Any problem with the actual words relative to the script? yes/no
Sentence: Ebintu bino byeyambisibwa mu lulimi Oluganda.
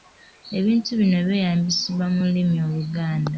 no